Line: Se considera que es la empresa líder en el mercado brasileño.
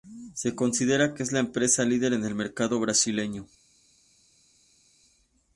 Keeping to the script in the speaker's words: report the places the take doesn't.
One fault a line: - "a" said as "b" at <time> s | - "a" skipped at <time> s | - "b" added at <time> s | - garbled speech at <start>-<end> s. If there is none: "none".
none